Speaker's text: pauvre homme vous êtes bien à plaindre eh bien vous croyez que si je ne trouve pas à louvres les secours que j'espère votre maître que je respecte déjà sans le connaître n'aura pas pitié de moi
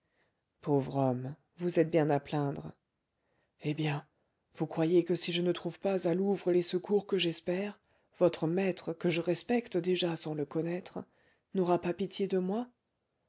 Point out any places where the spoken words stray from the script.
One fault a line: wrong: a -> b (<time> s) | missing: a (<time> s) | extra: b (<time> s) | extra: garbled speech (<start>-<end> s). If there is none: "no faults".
no faults